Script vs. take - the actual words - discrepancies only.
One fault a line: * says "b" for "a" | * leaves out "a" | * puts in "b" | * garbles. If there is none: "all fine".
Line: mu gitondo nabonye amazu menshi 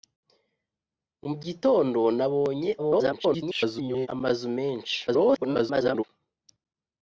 * garbles
* garbles